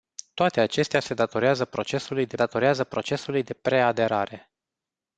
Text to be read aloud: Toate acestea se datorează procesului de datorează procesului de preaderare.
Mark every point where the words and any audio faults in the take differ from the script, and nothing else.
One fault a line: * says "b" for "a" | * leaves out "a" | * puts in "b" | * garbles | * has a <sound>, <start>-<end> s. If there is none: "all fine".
all fine